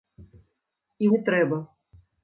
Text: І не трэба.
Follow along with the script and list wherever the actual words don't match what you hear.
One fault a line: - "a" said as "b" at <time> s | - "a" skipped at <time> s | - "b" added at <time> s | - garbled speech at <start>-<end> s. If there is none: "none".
none